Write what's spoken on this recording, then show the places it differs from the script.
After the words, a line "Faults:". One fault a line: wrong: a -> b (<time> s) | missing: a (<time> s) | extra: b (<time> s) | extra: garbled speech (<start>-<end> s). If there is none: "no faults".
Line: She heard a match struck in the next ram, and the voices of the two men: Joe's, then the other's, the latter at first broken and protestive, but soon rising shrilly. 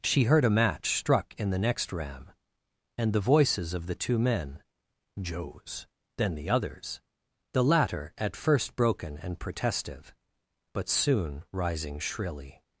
She heard a match struck in the next ram, and the voices of the two men: Joe's, then the other's, the latter at first broken and protestive, but soon rising shrilly.
Faults:
no faults